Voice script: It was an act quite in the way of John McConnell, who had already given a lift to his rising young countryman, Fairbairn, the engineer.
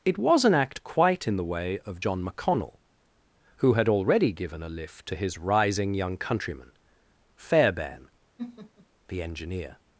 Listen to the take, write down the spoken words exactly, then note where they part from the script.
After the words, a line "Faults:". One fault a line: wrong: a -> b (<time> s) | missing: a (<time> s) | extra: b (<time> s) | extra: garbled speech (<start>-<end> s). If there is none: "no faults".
It was an act quite in the way of John McConnell, who had already given a lift to his rising young countryman, Fairbairn, the engineer.
Faults:
no faults